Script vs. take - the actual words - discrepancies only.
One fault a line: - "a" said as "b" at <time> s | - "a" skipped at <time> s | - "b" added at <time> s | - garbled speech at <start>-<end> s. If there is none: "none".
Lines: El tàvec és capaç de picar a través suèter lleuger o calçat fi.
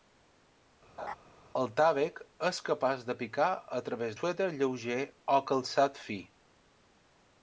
none